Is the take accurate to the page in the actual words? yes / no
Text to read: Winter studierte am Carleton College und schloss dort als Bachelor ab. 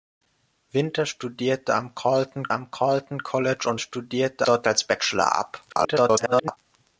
no